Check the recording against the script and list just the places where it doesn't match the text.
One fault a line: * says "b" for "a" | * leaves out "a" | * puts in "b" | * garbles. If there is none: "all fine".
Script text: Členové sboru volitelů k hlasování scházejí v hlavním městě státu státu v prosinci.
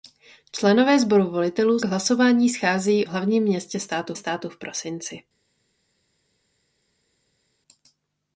all fine